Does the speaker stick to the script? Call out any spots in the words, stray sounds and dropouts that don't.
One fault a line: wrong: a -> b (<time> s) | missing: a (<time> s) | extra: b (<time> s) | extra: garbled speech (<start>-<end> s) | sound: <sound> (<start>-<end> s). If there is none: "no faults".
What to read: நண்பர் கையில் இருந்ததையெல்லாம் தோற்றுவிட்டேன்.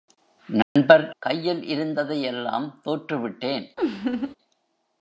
sound: dropout (0.6-0.8 s)
sound: laugh (3.8-4.4 s)